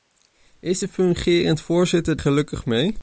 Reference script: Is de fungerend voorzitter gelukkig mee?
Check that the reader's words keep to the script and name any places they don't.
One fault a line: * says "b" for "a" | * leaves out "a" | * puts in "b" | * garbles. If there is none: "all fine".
all fine